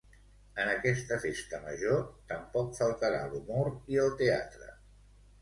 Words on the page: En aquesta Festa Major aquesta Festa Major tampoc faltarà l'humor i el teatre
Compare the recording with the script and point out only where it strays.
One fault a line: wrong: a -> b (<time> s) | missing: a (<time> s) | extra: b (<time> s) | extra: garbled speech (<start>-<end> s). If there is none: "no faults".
missing: aquesta Festa Major (2.0 s)